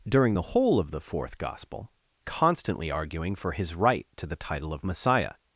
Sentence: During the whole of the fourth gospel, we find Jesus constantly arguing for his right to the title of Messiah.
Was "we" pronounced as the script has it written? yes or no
no